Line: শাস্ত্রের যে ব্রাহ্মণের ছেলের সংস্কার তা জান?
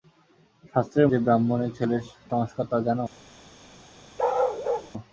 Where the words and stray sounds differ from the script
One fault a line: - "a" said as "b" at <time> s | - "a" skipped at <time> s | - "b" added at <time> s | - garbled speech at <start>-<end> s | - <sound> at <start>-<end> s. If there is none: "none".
- bark at 4.2-4.9 s